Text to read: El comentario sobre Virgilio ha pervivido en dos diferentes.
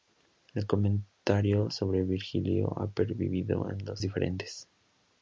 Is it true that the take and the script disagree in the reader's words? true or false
false